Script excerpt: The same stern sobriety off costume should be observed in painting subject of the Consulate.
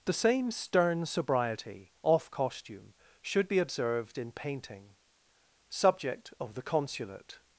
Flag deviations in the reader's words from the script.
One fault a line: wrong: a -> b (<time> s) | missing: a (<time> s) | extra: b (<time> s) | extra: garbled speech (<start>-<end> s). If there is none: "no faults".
no faults